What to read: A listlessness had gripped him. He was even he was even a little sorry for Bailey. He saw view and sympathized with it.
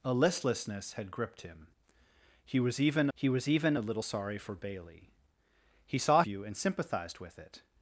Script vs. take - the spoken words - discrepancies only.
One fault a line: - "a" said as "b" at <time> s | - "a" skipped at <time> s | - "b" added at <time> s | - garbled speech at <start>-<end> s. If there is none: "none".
none